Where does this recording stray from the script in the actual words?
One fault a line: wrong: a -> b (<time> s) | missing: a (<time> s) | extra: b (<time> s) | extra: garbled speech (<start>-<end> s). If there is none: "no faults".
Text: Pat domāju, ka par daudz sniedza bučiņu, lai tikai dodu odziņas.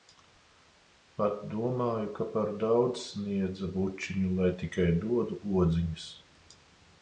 no faults